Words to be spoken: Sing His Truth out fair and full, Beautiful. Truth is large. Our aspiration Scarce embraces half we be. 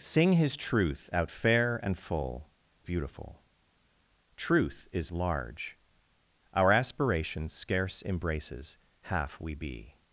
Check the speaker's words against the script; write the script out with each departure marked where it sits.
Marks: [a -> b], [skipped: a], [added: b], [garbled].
Sing His Truth out fair and full, Beautiful. Truth is large. Our aspiration Scarce embraces half we be.